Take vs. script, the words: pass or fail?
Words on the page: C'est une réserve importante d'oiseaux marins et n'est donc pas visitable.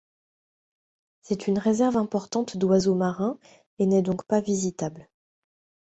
pass